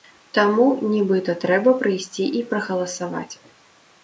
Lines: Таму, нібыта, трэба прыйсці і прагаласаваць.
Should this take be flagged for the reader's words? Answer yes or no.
no